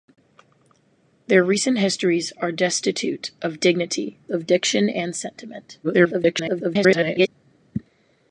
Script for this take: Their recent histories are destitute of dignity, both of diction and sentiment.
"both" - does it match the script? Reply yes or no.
no